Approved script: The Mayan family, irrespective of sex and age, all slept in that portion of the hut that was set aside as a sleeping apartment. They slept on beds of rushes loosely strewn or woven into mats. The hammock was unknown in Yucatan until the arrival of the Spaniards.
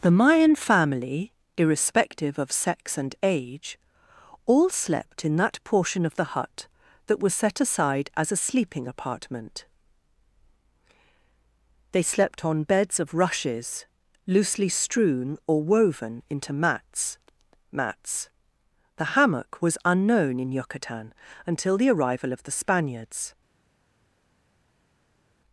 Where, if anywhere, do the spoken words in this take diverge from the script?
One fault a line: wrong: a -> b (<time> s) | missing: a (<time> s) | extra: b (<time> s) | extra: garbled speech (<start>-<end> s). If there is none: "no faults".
extra: mats (17.7 s)